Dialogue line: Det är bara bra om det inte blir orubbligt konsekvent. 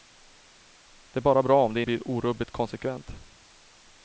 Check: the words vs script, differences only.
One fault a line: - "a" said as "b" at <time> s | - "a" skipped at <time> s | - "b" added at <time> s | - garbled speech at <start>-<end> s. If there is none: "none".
- "inte" skipped at 1.8 s